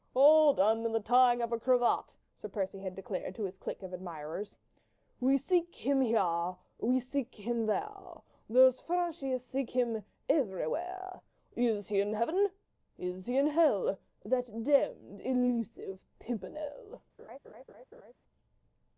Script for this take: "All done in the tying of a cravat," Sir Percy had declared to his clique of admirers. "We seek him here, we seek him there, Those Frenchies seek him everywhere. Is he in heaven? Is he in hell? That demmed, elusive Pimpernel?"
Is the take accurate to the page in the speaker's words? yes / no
yes